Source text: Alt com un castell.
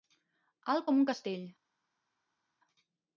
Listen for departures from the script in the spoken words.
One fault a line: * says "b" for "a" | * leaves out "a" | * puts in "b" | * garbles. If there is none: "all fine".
all fine